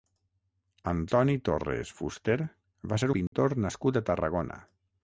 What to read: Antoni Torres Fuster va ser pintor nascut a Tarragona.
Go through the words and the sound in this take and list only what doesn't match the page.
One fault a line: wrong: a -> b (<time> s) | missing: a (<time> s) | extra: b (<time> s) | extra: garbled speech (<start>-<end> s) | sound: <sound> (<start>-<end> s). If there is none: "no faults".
sound: dropout (3.3-3.3 s)